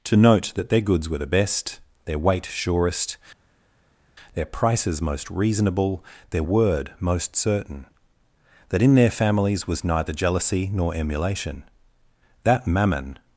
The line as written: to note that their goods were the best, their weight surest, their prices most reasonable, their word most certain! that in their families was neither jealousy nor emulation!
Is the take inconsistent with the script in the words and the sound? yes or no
yes